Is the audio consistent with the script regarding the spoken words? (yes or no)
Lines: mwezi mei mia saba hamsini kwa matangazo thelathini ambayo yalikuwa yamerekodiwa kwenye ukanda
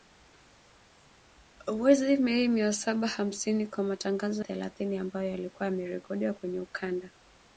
yes